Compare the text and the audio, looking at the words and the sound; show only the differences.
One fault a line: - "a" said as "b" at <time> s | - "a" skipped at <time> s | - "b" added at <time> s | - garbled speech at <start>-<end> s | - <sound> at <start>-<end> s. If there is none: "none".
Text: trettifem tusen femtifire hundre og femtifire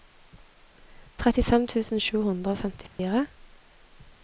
- "femtifire" said as "sju" at 2.0 s
- dropout at 2.9-3.0 s